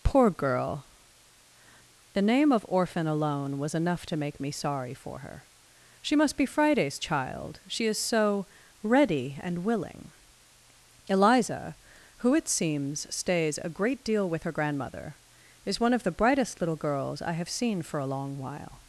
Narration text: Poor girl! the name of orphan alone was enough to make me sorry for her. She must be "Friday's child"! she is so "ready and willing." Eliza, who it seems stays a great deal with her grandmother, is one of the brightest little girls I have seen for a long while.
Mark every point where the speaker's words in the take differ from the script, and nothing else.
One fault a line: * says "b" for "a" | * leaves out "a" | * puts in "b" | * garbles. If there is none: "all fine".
all fine